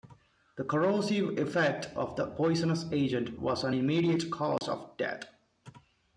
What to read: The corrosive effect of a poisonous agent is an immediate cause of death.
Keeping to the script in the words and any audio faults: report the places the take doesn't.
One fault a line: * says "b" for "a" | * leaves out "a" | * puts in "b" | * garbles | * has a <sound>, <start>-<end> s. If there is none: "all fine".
* says "the" for "a"
* says "was" for "is"
* has a dropout, 4.6-4.6 s